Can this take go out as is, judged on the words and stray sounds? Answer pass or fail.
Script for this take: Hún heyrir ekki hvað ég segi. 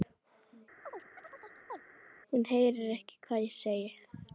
fail